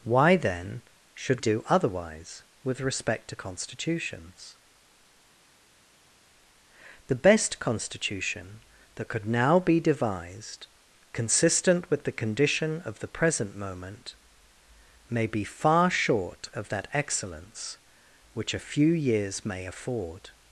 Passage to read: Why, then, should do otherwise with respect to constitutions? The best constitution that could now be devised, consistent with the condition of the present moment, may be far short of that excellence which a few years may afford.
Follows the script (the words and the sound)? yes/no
yes